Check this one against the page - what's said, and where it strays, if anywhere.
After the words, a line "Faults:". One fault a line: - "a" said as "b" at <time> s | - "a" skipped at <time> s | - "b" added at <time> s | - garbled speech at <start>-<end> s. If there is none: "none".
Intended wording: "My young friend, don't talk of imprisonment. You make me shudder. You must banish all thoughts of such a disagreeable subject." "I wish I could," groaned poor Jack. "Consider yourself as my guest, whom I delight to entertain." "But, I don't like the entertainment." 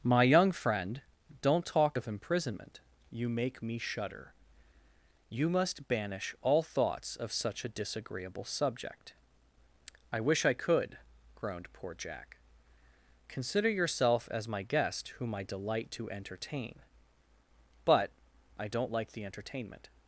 "My young friend, don't talk of imprisonment. You make me shudder. You must banish all thoughts of such a disagreeable subject." "I wish I could," groaned poor Jack. "Consider yourself as my guest, whom I delight to entertain." "But, I don't like the entertainment."
Faults:
none